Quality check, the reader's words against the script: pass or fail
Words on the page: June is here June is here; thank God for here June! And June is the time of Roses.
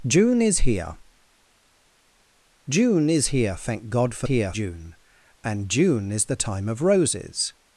pass